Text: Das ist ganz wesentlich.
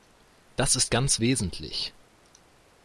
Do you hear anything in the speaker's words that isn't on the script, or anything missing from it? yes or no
no